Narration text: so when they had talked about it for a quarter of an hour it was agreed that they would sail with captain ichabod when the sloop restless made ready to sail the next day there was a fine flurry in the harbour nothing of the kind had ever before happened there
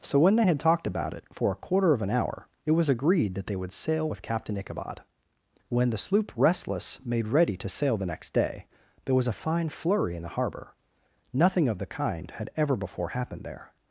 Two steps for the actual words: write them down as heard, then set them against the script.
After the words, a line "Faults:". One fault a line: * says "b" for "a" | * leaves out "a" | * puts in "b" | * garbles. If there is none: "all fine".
so when they had talked about it for a quarter of an hour it was agreed that they would sail with captain ichabod when the sloop restless made ready to sail the next day there was a fine flurry in the harbour nothing of the kind had ever before happened there
Faults:
all fine